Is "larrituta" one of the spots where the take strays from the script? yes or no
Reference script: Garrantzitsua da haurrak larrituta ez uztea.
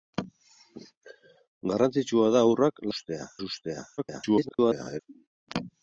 yes